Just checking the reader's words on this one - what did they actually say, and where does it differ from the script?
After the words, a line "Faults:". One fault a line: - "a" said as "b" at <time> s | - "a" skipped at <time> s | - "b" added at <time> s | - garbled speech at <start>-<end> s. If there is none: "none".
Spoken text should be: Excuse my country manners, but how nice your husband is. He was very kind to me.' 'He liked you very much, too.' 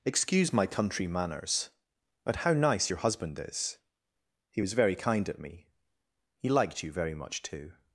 Excuse my country manners, but how nice your husband is. He was very kind at me.' 'He liked you very much, too.'
Faults:
- "to" said as "at" at 5.3 s